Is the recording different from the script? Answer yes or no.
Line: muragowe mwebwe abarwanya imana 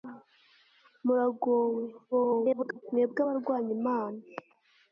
yes